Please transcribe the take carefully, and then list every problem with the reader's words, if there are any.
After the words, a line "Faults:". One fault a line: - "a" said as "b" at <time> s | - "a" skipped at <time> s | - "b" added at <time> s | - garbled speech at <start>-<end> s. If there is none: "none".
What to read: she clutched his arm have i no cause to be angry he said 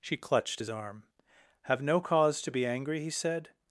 she clutched his arm have no cause to be angry he said
Faults:
- "i" skipped at 1.8 s